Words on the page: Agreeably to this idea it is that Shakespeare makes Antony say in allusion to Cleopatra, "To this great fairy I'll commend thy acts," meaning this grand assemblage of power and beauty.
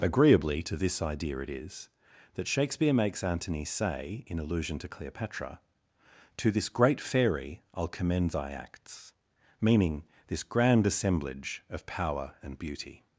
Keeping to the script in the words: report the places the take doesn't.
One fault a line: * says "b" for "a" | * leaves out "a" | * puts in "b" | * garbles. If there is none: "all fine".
all fine